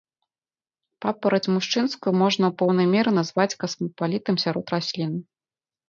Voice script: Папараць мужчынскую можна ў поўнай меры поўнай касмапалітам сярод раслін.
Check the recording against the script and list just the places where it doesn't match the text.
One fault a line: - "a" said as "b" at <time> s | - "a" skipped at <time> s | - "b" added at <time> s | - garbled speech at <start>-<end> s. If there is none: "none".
- "поўнай" said as "назваць" at 3.2 s